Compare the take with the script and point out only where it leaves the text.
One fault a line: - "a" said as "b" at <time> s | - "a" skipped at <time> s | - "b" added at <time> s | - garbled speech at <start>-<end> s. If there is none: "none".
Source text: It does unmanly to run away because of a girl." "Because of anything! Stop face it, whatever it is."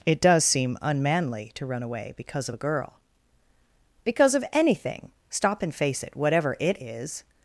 - "seem" added at 0.5 s
- "and" added at 5.6 s